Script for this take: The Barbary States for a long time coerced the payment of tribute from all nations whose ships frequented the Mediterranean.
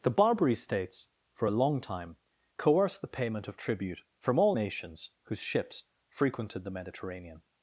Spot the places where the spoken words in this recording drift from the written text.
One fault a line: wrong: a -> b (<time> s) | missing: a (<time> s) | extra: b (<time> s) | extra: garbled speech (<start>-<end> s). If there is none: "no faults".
no faults